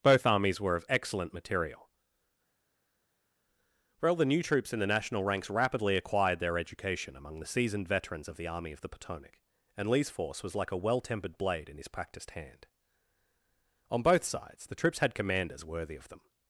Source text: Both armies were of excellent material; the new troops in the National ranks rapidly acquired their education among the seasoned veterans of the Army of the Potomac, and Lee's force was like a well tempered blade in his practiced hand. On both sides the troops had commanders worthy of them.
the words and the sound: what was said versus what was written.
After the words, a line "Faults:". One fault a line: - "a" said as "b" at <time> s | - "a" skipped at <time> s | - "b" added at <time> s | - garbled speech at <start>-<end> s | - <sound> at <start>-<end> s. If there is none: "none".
Both armies were of excellent material; well the new troops in the National ranks rapidly acquired their education among the seasoned veterans of the Army of the Potomac, and Lee's force was like a well tempered blade in his practiced hand. On both sides the troops had commanders worthy of them.
Faults:
- "well" added at 4.0 s